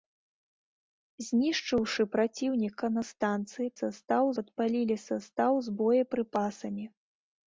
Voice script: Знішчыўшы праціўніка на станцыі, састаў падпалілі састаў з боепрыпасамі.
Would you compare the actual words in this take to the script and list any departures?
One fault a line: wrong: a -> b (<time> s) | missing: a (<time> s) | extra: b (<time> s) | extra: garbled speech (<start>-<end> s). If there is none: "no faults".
no faults